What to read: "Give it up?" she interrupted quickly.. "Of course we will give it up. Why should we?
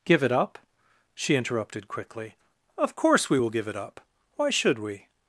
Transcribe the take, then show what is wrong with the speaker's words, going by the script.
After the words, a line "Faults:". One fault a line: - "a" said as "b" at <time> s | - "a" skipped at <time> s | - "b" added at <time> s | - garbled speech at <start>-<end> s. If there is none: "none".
"Give it up?" she interrupted quickly.. "Of course we will give it up. Why should we?
Faults:
none